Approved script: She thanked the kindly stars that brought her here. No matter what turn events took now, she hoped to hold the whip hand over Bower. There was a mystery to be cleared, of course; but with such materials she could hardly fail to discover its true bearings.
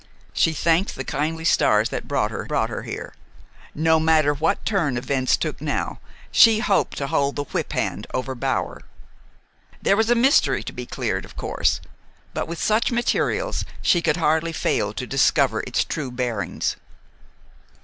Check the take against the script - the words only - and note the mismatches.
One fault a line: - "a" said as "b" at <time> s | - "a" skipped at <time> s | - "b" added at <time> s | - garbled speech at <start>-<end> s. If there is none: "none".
- "brought her" added at 2.5 s